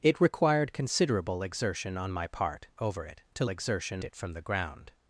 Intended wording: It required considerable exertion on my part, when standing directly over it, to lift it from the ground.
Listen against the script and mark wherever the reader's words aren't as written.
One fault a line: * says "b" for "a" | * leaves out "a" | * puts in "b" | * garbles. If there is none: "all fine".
* leaves out "when standing directly"
* says "exertion" for "lift"